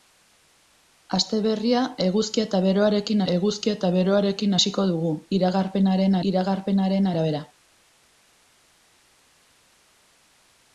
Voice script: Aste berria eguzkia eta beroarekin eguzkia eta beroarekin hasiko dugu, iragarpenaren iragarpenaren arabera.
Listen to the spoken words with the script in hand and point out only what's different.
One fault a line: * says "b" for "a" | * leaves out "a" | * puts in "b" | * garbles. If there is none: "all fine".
all fine